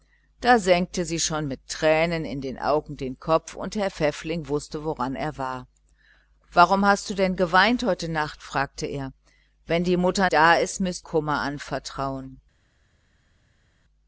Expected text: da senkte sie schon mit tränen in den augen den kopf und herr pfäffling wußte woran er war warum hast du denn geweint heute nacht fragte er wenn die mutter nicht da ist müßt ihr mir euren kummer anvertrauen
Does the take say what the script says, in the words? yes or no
no